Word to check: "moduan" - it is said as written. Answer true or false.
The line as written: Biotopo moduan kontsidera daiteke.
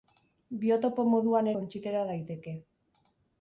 true